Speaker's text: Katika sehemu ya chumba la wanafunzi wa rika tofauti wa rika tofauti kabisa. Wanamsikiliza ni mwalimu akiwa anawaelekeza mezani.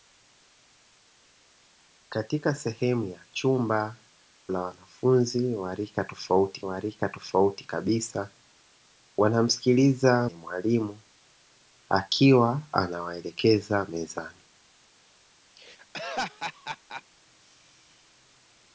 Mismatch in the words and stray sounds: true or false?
true